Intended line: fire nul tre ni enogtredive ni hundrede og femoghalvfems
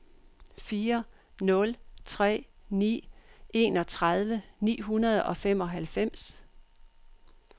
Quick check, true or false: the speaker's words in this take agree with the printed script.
true